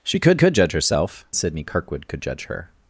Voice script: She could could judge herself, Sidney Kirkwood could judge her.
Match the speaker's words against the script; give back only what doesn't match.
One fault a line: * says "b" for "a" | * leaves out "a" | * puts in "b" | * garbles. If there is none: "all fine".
all fine